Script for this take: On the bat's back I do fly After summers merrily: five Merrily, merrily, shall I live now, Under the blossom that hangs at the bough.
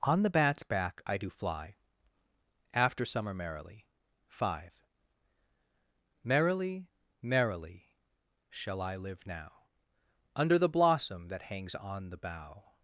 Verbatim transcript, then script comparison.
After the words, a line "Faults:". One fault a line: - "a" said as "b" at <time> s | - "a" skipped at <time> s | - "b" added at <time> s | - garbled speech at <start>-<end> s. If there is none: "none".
On the bat's back I do fly After summer merrily: five Merrily, merrily, shall I live now, Under the blossom that hangs on the bough.
Faults:
- "summers" said as "summer" at 3.0 s
- "at" said as "on" at 11.8 s